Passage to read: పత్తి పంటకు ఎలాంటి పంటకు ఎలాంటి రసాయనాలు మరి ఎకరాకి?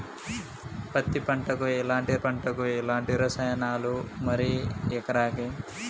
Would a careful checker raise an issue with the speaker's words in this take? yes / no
no